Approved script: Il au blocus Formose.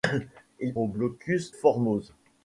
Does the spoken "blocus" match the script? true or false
true